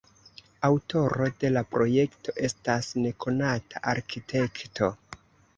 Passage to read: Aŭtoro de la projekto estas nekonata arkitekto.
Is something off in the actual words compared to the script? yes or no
no